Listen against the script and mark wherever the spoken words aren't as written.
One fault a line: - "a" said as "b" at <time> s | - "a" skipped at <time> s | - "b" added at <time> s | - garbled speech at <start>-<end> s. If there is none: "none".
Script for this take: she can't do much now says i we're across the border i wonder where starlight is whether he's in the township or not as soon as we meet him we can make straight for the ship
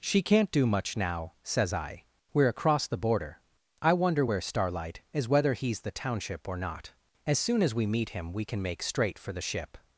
- "in" skipped at 5.8 s